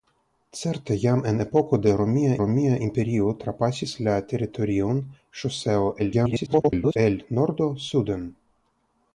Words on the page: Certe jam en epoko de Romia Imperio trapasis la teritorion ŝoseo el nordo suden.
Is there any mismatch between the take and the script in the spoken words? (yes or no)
yes